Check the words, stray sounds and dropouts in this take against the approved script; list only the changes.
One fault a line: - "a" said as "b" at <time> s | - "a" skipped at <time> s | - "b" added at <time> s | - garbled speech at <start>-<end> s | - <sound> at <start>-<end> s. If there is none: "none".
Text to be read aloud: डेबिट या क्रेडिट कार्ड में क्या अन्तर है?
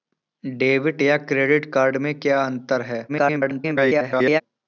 - garbled speech at 3.1-4.4 s